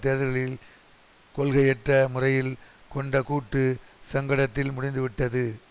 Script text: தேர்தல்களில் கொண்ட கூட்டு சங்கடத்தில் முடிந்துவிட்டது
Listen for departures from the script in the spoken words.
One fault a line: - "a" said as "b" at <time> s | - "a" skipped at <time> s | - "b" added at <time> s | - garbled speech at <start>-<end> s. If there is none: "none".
- "கொள்கையற்ற முறையில்" added at 1.4 s